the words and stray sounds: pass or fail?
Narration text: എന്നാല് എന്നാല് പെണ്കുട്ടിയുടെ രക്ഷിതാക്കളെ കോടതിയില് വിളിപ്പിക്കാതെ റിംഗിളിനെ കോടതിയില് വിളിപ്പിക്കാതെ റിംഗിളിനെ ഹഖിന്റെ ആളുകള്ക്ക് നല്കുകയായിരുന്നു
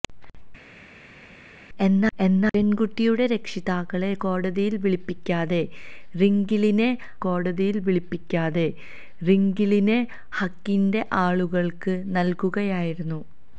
pass